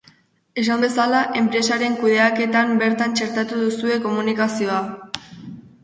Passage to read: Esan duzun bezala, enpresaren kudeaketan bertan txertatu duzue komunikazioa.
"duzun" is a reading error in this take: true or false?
true